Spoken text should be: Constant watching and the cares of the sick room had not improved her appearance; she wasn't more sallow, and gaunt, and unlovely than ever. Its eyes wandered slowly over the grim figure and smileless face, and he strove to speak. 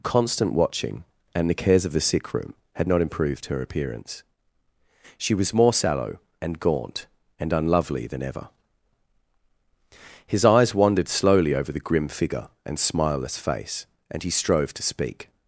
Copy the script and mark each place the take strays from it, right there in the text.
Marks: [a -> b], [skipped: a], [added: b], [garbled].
Constant watching and the cares of the sick room had not improved her appearance; she [wasn't -> was] more sallow, and gaunt, and unlovely than ever. [Its -> His] eyes wandered slowly over the grim figure and smileless face, and he strove to speak.